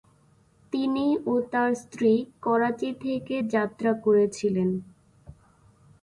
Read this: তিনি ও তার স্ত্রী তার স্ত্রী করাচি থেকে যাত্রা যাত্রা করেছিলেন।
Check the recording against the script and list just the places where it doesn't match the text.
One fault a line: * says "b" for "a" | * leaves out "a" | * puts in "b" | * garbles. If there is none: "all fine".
* leaves out "তার স্ত্রী"
* leaves out "যাত্রা"